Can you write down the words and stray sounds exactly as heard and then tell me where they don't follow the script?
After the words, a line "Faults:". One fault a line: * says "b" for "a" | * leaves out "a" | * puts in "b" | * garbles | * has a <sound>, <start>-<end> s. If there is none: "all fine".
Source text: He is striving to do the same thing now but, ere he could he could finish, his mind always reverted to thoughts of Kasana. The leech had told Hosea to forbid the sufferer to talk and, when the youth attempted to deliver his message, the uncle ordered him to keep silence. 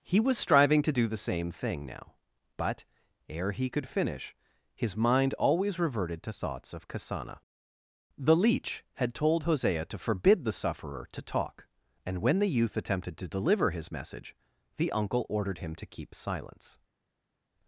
He was striving to do the same thing now but, ere he could finish, his mind always reverted to thoughts of Kasana. The leech had told Hosea to forbid the sufferer to talk and, when the youth attempted to deliver his message, the uncle ordered him to keep silence.
Faults:
* says "was" for "is"
* leaves out "he could"